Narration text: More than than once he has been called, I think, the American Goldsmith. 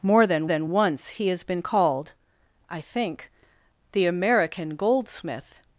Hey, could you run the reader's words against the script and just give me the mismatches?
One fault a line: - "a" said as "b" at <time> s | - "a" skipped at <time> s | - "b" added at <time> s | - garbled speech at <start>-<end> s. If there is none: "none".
none